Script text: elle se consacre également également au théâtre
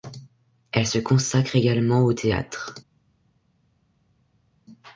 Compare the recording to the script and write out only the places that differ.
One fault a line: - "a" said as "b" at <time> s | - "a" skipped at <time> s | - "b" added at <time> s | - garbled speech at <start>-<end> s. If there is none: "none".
- "également" skipped at 2.1 s